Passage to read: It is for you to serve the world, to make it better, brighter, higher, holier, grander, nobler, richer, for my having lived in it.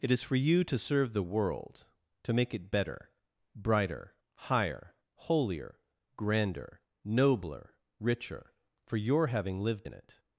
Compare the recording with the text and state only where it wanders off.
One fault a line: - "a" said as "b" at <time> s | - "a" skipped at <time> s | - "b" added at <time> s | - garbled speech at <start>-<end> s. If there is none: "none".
- "my" said as "your" at 9.0 s